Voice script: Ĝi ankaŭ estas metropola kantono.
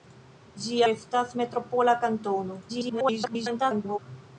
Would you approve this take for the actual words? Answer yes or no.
no